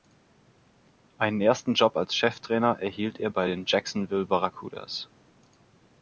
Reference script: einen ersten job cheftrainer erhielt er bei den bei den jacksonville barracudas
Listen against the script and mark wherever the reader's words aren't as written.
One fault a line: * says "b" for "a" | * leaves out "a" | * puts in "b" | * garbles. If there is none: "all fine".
* puts in "als"
* leaves out "bei den"